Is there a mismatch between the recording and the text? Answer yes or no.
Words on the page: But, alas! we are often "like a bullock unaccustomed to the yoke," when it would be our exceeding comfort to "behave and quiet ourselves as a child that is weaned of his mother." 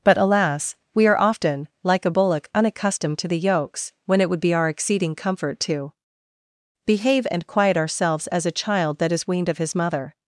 yes